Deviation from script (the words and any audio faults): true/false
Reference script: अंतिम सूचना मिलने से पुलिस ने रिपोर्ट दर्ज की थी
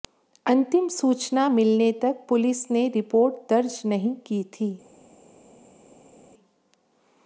true